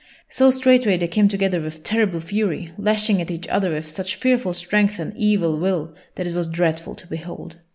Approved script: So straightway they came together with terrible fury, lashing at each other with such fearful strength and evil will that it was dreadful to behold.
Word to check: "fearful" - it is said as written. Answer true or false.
true